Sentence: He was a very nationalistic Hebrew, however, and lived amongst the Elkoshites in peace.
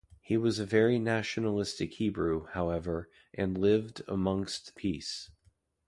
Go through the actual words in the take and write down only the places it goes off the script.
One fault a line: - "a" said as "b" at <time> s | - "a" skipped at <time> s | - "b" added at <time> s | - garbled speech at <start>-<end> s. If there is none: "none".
- "the Elkoshites in" skipped at 4.7 s